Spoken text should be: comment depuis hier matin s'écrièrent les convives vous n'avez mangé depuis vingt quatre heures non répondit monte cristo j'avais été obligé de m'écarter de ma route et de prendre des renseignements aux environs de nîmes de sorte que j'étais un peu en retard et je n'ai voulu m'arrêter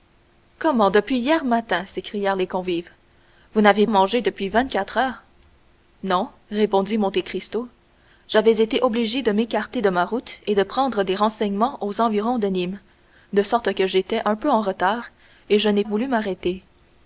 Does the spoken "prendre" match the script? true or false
true